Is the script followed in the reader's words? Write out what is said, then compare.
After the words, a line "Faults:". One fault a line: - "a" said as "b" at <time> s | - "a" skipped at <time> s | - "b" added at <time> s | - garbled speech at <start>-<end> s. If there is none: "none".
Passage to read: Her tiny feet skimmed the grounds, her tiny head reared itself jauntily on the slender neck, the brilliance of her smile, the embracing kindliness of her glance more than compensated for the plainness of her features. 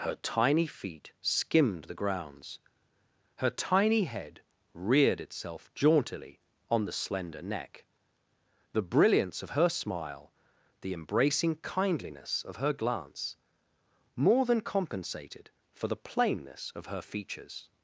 Her tiny feet skimmed the grounds, her tiny head reared itself jauntily on the slender neck, the brilliance of her smile, the embracing kindliness of her glance more than compensated for the plainness of her features.
Faults:
none